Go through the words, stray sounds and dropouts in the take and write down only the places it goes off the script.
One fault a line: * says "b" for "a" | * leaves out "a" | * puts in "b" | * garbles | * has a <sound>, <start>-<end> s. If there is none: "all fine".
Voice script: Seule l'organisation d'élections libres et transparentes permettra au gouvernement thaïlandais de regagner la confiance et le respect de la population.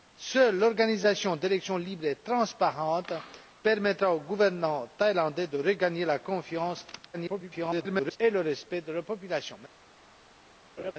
* garbles
* has a laugh, 10.8-10.9 s